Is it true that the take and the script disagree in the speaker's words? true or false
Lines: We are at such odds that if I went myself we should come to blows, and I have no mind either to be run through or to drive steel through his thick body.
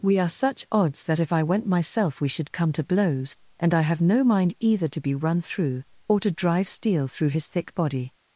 true